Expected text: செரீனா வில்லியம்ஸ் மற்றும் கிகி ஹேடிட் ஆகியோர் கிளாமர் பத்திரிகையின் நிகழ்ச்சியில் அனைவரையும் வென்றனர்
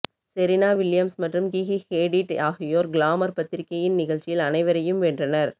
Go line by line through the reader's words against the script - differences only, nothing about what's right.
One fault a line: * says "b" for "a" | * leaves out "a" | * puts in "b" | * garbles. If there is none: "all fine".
all fine